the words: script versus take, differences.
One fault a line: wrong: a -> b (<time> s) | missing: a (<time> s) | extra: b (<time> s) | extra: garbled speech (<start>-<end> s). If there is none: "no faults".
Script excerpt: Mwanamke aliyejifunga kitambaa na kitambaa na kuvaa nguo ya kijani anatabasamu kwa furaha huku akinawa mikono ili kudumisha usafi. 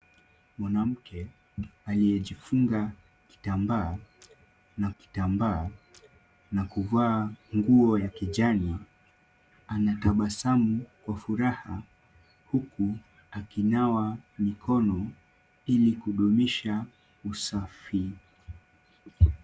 no faults